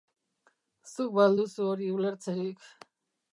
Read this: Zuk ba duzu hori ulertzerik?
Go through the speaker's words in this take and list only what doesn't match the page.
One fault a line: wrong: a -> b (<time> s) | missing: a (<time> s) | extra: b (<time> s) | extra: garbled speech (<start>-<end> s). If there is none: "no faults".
extra: al (1.3 s)